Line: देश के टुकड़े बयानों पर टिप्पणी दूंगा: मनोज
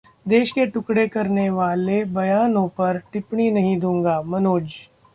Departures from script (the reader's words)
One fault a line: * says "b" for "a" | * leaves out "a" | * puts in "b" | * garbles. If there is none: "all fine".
* puts in "करने वाले"
* puts in "नहीं"